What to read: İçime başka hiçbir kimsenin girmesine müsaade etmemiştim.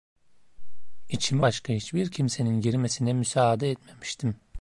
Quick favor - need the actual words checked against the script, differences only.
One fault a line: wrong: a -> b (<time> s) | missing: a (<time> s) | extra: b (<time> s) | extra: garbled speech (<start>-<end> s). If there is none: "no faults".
no faults